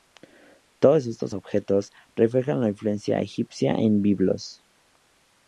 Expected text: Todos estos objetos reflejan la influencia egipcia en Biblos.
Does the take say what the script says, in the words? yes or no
yes